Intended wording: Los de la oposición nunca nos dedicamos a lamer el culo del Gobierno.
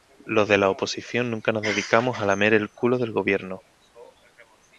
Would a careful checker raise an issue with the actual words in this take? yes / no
no